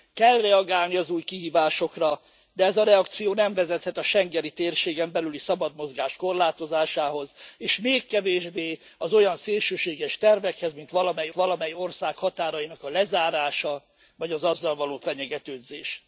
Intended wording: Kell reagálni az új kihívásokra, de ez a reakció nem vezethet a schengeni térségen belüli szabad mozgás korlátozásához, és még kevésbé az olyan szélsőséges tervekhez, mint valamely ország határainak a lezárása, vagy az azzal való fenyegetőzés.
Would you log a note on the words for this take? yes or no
yes